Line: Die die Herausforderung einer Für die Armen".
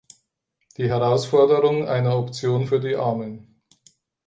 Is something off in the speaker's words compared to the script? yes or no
yes